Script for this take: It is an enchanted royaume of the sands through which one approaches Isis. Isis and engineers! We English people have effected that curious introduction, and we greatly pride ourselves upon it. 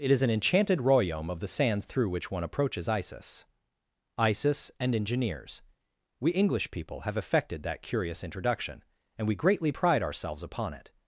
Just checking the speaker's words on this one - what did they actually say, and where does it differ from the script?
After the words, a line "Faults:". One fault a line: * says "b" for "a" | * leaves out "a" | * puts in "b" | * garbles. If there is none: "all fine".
It is an enchanted royaume of the sands through which one approaches Isis. Isis and engineers! We English people have effected that curious introduction, and we greatly pride ourselves upon it.
Faults:
all fine